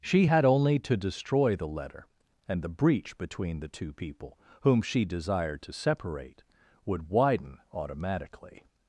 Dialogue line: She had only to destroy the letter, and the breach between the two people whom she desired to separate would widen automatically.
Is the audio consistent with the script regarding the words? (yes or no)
yes